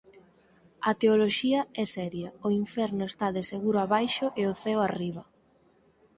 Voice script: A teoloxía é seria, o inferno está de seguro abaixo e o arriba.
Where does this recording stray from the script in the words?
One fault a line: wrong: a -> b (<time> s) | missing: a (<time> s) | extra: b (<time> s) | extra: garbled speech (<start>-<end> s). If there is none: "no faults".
extra: ceo (4.6 s)